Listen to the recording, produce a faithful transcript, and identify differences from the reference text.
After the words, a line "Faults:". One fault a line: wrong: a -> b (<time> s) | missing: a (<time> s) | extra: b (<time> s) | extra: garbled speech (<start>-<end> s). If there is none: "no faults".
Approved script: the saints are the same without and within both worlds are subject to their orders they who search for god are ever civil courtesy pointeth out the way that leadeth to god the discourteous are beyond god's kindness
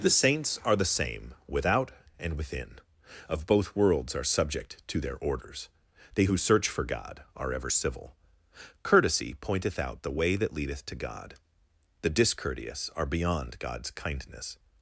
the saints are the same without and within of both worlds are subject to their orders they who search for god are ever civil courtesy pointeth out the way that leadeth to god the discourteous are beyond god's kindness
Faults:
extra: of (3.3 s)